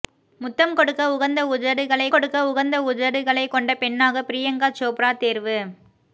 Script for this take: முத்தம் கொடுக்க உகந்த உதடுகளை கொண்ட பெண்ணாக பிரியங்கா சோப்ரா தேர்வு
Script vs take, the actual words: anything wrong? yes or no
yes